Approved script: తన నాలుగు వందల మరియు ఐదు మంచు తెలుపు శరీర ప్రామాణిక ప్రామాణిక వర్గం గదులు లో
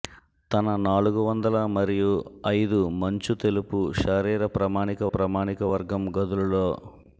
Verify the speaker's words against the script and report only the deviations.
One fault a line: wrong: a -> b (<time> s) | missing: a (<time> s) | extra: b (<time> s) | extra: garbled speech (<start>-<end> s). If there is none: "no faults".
no faults